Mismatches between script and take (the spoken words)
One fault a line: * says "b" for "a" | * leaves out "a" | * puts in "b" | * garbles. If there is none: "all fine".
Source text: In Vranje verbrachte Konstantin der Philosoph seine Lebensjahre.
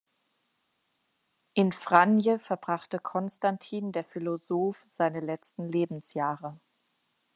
* puts in "letzten"